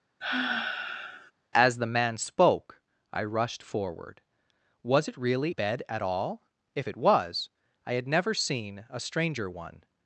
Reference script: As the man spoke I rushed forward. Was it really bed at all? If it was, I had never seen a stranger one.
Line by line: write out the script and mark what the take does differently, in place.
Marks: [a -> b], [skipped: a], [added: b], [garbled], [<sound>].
[sigh] As the man spoke I rushed forward. Was it really bed at all? If it was, I had never seen a stranger one.